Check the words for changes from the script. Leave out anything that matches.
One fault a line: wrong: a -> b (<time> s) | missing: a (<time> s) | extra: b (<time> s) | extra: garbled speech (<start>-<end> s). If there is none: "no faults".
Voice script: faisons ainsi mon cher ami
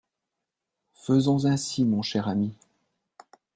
no faults